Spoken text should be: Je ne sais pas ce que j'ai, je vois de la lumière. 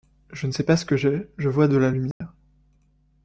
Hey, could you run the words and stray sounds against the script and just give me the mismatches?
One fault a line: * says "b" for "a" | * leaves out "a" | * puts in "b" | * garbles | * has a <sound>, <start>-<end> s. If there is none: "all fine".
* has a dropout, 2.1-2.2 s